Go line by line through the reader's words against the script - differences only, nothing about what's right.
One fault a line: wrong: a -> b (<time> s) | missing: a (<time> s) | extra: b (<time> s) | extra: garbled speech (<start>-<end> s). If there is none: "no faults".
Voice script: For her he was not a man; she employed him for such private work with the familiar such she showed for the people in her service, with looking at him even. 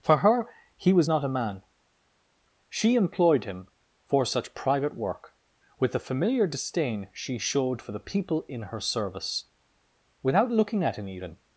wrong: such -> disdain (6.5 s)
wrong: with -> without (10.2 s)